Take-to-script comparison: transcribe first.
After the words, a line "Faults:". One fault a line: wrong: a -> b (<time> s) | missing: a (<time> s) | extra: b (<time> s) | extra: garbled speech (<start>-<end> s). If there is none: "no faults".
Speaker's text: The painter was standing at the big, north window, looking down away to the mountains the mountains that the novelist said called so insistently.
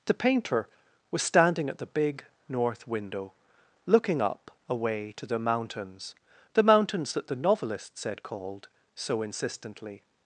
The painter was standing at the big, north window, looking up away to the mountains the mountains that the novelist said called so insistently.
Faults:
wrong: down -> up (4.2 s)